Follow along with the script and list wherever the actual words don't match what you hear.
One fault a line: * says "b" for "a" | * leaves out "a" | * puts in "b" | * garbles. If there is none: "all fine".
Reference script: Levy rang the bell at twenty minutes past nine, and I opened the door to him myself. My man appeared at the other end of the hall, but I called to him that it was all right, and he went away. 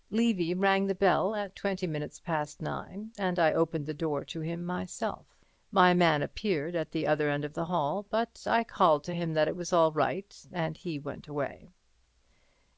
all fine